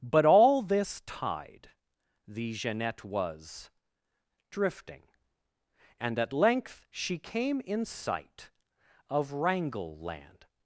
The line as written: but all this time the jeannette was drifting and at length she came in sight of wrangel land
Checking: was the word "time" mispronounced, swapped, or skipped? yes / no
yes